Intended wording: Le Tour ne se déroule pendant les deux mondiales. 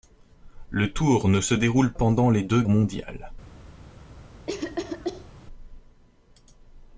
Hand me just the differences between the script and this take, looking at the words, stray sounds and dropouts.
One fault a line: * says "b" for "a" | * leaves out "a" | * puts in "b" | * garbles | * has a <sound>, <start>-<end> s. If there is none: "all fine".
* has a cough, 4.5-5.3 s